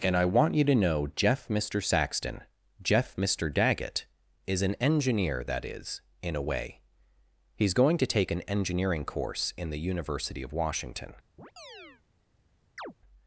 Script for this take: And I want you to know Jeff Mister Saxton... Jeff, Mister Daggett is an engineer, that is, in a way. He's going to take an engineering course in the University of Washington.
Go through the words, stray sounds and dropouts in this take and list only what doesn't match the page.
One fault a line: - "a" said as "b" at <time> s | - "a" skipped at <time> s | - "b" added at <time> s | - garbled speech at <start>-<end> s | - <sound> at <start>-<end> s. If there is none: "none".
- chirp at 11.4-12.0 s
- chirp at 12.8-12.9 s